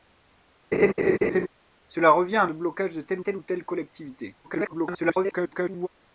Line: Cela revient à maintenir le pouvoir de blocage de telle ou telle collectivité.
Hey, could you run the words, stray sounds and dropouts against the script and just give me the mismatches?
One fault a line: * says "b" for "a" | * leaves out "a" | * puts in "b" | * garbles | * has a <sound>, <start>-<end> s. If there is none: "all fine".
* has a laugh, 0.7-1.5 s
* leaves out "maintenir le pouvoir"
* puts in "telle"
* garbles